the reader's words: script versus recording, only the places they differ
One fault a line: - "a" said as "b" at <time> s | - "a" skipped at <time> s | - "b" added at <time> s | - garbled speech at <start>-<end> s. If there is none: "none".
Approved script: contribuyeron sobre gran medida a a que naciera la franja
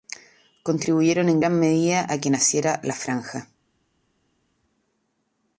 - "sobre" said as "en" at 1.3 s
- "a" skipped at 2.2 s